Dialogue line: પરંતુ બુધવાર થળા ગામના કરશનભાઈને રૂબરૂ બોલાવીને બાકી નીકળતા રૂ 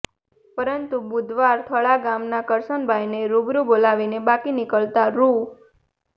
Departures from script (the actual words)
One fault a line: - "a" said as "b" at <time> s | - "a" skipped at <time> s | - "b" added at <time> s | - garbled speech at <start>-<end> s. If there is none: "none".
none